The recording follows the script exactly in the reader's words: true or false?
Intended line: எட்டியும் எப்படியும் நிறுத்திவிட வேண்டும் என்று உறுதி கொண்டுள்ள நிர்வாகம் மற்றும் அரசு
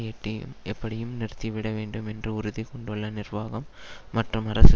true